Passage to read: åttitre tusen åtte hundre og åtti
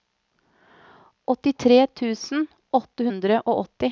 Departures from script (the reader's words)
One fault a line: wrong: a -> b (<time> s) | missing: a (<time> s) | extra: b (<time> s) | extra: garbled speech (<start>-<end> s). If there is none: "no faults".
no faults